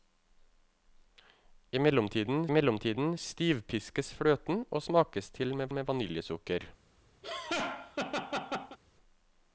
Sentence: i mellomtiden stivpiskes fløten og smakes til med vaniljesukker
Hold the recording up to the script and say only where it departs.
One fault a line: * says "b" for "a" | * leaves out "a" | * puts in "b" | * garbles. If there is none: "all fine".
* puts in "mellomtiden"
* puts in "med"